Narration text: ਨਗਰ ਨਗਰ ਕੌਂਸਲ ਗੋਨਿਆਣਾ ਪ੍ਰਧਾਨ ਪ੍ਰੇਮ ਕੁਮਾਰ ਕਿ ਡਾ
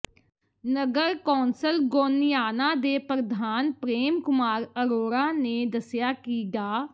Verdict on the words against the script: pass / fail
fail